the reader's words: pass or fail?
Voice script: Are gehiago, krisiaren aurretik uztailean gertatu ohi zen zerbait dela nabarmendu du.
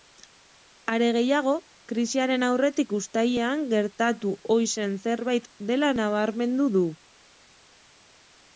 pass